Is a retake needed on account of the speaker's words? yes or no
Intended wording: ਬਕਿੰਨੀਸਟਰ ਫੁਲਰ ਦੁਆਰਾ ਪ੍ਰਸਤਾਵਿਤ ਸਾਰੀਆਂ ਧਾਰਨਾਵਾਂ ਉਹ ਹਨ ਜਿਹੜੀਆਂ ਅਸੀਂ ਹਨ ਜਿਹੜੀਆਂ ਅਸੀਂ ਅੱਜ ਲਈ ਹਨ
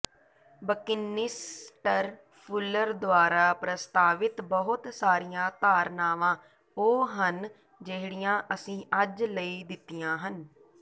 yes